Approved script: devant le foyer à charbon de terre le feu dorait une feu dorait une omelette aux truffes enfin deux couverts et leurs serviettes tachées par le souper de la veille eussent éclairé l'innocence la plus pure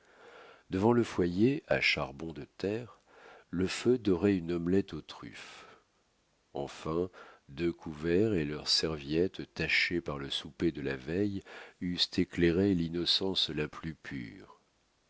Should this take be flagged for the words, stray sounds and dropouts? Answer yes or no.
yes